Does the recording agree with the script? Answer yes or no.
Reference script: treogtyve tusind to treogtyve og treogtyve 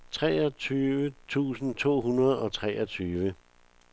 no